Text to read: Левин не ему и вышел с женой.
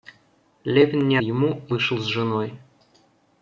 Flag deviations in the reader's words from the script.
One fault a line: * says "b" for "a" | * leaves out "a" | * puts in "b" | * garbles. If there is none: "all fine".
all fine